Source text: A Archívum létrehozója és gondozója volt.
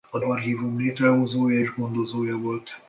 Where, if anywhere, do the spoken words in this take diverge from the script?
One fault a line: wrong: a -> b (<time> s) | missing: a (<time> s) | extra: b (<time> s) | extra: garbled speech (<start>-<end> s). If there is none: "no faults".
no faults